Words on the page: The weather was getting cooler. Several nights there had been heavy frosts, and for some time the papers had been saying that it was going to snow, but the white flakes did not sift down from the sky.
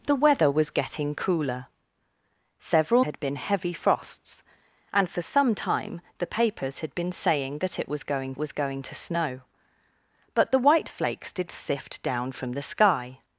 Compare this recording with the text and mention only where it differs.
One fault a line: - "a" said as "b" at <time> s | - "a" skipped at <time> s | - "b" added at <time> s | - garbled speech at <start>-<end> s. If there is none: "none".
- "nights there" skipped at 3.0 s
- "was going" added at 8.4 s
- "not" skipped at 11.5 s